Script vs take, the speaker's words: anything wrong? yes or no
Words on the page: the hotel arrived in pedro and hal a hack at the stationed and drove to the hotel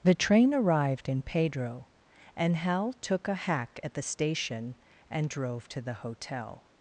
yes